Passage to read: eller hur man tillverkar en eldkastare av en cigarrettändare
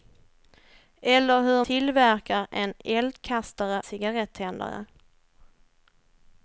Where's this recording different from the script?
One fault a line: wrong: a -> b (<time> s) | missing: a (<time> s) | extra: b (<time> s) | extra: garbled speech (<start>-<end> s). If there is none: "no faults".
missing: man (1.6 s)
missing: av en (3.8 s)